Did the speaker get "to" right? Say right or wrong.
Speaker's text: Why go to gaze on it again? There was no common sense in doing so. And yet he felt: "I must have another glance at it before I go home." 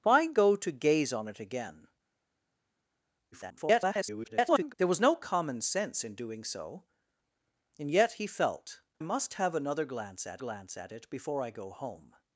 right